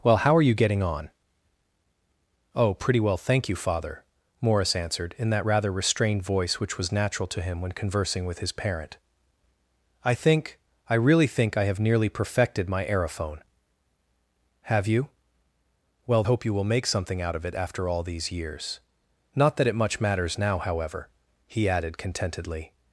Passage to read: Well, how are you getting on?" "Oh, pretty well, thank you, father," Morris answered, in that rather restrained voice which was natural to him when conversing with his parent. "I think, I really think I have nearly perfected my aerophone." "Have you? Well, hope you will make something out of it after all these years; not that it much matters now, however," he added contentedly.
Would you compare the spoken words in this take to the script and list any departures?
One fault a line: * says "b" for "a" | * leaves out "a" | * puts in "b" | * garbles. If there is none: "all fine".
all fine